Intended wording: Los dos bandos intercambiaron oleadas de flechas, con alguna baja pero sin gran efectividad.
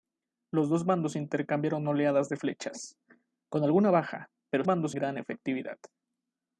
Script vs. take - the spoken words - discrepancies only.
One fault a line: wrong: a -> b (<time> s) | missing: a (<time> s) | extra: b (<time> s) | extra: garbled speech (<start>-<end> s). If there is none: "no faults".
wrong: sin -> bandos (4.6 s)